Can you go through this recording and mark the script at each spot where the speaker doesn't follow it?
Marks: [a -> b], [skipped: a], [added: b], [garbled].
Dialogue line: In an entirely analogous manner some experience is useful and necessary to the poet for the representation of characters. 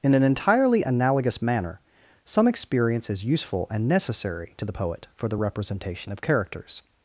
In an entirely analogous manner some experience is useful and necessary to the poet for the representation of characters.